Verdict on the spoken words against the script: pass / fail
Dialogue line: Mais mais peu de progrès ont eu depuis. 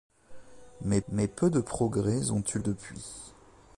pass